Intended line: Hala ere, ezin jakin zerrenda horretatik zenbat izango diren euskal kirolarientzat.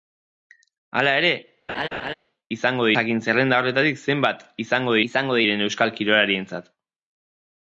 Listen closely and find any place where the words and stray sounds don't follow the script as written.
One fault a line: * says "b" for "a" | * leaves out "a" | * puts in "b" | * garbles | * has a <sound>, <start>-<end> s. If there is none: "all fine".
* has a laugh, 1.7-2.1 s
* says "izango" for "ezin"
* puts in "izango"